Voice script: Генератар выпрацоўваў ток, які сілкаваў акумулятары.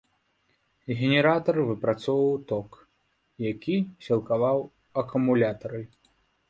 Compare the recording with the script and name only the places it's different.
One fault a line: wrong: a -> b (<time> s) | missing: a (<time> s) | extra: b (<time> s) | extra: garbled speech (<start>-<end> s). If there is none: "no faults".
no faults